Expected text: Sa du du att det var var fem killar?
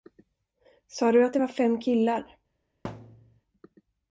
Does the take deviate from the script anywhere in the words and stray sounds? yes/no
yes